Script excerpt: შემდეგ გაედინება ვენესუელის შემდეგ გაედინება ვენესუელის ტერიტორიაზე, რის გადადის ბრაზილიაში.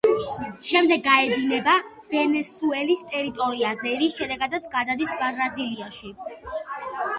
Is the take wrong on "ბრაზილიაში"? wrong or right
right